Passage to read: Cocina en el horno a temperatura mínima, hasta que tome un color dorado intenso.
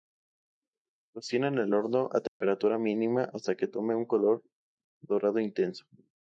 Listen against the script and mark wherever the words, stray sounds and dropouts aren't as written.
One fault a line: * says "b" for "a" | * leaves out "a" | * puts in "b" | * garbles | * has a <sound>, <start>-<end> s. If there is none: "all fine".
* has a dropout, 2.3-2.4 s